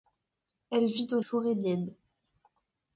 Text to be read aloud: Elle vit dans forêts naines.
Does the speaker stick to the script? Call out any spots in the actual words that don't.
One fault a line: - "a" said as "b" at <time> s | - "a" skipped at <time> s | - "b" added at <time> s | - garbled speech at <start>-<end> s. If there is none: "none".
none